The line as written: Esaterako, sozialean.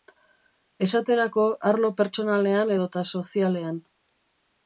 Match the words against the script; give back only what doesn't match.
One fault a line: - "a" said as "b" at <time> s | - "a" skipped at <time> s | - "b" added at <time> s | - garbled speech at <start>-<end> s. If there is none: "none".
- "arlo pertsonalean edota" added at 1.7 s